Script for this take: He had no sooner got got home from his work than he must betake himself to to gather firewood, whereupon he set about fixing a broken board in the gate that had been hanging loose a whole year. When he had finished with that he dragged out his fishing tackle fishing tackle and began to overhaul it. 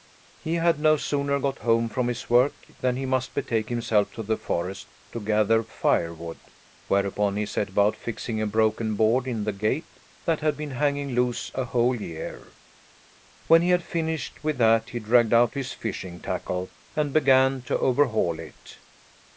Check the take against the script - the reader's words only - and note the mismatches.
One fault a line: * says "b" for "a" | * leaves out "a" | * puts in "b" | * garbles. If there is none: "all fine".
* leaves out "got"
* puts in "the forest"
* leaves out "fishing tackle"